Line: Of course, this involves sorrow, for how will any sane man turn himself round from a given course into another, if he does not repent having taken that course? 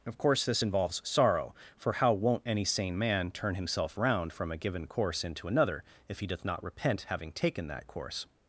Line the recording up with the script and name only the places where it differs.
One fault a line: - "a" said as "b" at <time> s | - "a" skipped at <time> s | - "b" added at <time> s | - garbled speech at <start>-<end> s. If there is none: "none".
- "will" said as "won't" at 2.1 s
- "does" said as "doth" at 6.3 s